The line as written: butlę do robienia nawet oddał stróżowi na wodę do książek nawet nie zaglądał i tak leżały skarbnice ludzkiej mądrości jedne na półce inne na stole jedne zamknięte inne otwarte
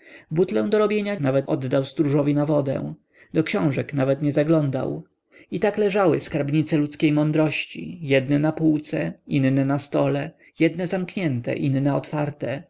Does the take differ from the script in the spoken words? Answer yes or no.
no